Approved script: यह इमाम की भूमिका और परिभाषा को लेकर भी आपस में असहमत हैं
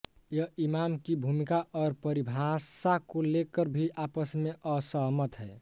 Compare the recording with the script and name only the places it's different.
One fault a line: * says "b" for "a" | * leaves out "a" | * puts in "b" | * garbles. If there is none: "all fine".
all fine